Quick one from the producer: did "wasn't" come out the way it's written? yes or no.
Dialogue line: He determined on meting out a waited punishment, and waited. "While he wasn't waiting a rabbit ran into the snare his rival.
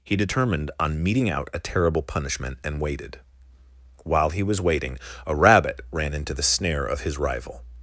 no